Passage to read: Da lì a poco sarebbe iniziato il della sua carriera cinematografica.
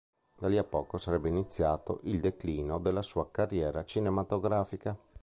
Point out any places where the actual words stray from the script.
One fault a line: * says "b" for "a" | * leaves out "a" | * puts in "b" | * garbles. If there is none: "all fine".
* puts in "declino"